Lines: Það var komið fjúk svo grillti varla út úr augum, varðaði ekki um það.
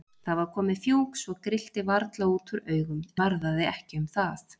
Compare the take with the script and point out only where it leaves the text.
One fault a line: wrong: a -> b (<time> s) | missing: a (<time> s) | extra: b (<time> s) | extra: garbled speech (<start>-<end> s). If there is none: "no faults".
no faults